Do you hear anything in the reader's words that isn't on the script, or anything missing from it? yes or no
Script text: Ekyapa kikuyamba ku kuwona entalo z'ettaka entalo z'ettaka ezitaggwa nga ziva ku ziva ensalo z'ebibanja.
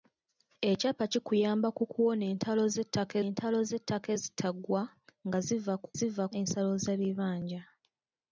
no